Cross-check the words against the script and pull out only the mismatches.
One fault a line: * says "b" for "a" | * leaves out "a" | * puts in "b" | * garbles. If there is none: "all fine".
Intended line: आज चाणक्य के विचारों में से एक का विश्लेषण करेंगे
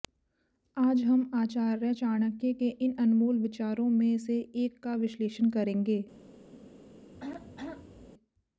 * puts in "हम आचार्य"
* puts in "इन अनमोल"